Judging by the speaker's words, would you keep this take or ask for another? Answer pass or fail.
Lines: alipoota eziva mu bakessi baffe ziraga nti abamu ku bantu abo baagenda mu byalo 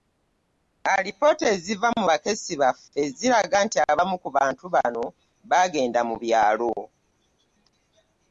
fail